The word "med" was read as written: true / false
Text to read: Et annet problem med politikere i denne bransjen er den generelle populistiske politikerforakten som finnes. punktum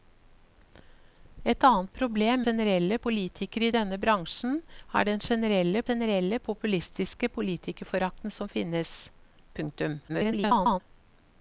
false